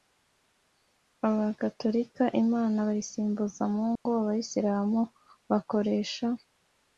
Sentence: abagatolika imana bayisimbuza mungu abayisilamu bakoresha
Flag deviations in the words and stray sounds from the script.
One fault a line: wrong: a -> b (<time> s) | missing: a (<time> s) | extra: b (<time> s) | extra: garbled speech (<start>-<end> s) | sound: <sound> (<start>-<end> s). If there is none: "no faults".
sound: dropout (4.0-4.1 s)